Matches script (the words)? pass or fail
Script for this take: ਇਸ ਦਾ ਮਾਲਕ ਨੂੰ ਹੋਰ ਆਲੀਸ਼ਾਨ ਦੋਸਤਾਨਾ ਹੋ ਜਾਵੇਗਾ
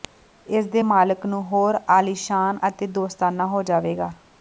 fail